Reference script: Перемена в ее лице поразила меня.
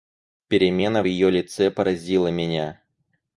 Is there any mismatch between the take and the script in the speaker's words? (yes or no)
no